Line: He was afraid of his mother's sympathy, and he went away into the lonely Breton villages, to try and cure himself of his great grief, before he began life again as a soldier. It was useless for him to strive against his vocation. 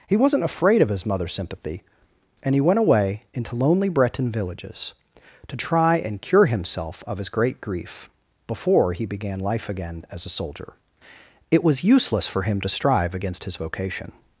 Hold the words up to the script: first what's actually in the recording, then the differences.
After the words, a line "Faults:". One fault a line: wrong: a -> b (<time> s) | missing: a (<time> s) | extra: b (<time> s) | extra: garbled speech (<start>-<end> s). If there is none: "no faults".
He wasn't afraid of his mother's sympathy, and he went away into lonely Breton villages, to try and cure himself of his great grief, before he began life again as a soldier. It was useless for him to strive against his vocation.
Faults:
wrong: was -> wasn't (0.2 s)
missing: the (3.5 s)